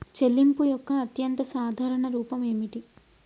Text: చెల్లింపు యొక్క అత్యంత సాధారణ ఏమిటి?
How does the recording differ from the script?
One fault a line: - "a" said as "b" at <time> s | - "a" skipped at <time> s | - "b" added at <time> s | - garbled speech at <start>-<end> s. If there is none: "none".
- "రూపం" added at 2.1 s